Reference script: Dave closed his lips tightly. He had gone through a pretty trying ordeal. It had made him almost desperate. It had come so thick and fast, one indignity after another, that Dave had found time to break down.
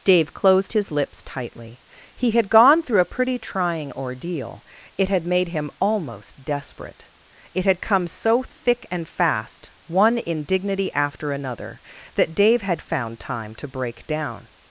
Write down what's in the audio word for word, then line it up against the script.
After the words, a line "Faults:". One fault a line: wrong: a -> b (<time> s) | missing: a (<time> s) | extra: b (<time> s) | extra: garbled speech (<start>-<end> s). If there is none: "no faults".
Dave closed his lips tightly. He had gone through a pretty trying ordeal. It had made him almost desperate. It had come so thick and fast, one indignity after another, that Dave had found time to break down.
Faults:
no faults